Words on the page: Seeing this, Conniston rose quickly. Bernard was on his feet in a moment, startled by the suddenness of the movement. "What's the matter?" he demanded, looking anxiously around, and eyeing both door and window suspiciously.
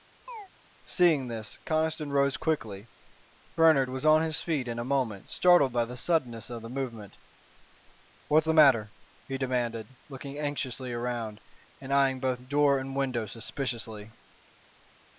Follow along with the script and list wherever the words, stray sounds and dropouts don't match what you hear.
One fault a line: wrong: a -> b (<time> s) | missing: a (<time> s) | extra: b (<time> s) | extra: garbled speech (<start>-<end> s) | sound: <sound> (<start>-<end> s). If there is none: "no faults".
sound: chirp (0.3-0.5 s)